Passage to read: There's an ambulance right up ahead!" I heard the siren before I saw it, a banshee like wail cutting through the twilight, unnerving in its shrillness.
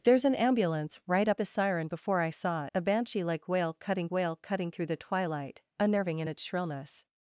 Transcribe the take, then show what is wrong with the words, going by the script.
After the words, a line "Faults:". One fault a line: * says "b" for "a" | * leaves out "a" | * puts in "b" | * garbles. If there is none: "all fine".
There's an ambulance right up the siren before I saw a banshee like wail cutting wail cutting through the twilight, unnerving in its shrillness.
Faults:
* leaves out "ahead I heard"
* leaves out "it"
* puts in "wail cutting"